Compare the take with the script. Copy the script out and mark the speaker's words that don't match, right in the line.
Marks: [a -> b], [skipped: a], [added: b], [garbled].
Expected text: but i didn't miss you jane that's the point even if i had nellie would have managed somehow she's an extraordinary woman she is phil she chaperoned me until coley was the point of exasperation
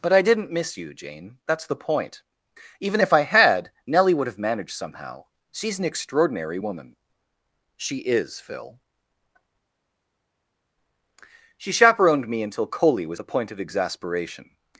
but i didn't miss you jane that's the point even if i had nellie would have managed somehow she's an extraordinary woman she is phil she chaperoned me until coley was the point of exasperation